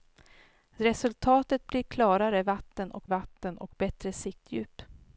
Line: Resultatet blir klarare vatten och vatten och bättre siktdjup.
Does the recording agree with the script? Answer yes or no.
yes